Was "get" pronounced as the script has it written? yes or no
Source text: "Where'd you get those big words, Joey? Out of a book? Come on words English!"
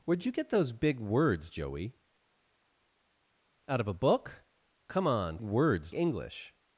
yes